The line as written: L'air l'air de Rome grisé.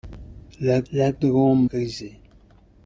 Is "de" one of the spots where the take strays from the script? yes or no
no